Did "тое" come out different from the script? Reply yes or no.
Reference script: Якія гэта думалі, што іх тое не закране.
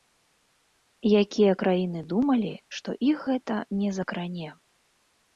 yes